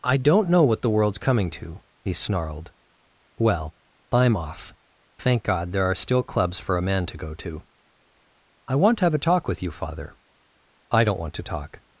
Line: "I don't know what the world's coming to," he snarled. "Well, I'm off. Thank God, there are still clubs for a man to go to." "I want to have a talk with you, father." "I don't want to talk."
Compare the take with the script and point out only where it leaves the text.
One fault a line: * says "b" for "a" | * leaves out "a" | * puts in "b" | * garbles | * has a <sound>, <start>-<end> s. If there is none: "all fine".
all fine